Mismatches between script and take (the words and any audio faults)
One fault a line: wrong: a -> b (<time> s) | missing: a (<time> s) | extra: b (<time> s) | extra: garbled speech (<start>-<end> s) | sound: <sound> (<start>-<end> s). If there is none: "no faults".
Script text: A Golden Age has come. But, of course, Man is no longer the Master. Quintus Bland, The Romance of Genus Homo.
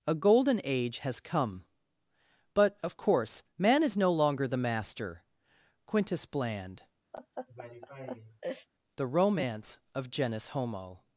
sound: laugh (7.1-8.7 s)